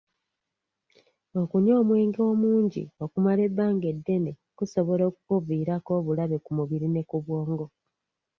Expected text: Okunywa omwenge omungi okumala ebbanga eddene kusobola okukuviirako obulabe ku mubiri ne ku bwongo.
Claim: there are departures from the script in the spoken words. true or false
false